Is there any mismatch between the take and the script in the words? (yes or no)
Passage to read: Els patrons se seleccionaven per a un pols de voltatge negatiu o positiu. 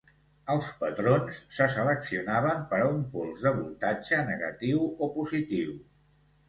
no